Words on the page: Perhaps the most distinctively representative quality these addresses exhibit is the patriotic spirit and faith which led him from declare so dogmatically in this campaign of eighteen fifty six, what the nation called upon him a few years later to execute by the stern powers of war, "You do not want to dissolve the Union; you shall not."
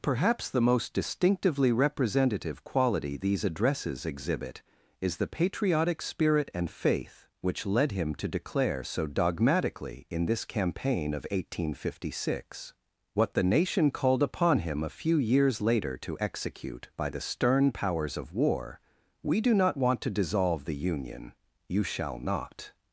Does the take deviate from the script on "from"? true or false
true